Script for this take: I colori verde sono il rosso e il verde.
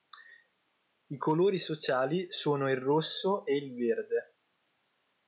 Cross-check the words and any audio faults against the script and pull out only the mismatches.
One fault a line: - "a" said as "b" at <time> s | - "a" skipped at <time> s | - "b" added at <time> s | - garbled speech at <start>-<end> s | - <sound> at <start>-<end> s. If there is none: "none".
- "verde" said as "sociali" at 1.6 s